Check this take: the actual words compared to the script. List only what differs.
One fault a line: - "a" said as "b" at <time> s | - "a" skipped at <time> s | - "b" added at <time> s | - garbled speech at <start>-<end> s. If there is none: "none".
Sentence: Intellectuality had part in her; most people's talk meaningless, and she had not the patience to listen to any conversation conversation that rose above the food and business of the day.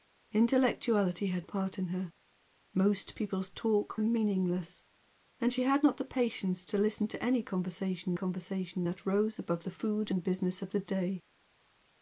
none